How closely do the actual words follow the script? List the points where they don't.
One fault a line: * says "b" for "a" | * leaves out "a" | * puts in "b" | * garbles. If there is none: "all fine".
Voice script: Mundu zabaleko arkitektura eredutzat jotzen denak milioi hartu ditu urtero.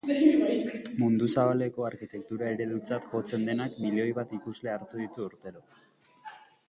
* puts in "bat ikusle"